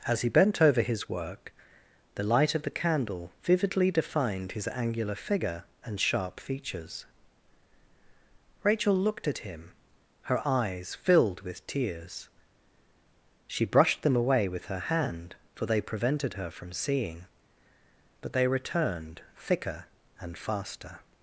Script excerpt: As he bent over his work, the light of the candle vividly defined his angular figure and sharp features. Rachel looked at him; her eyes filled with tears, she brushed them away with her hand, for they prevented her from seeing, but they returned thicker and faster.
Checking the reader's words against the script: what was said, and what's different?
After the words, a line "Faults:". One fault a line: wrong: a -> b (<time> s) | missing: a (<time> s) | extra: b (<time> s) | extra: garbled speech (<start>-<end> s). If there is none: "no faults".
As he bent over his work, the light of the candle vividly defined his angular figure and sharp features. Rachel looked at him; her eyes filled with tears, she brushed them away with her hand, for they prevented her from seeing, but they returned thicker and faster.
Faults:
no faults